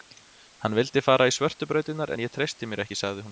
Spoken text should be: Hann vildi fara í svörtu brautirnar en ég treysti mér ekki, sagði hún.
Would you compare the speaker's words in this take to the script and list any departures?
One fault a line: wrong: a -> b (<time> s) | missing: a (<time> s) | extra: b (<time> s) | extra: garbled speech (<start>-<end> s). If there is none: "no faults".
no faults